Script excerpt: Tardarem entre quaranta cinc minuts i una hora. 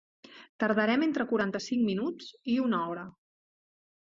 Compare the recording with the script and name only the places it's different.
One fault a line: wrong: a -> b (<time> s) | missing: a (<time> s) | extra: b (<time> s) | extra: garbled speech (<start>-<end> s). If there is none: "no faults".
no faults